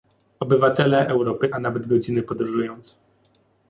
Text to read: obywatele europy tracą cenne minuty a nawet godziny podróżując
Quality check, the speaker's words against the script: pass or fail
fail